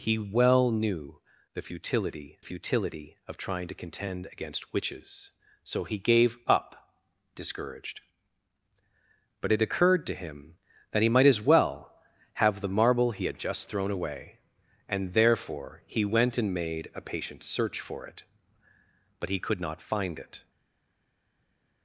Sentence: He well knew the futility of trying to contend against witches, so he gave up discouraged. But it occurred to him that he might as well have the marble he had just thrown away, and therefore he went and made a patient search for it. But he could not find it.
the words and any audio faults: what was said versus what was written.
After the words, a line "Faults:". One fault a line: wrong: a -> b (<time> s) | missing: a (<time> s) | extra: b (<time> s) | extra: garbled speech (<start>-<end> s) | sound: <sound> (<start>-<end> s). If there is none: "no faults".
He well knew the futility futility of trying to contend against witches, so he gave up discouraged. But it occurred to him that he might as well have the marble he had just thrown away, and therefore he went and made a patient search for it. But he could not find it.
Faults:
extra: futility (2.4 s)